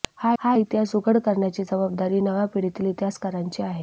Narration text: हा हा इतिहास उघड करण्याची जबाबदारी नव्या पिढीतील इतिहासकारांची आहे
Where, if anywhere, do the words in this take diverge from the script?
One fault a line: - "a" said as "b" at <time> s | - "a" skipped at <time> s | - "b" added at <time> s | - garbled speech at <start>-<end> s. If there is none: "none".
none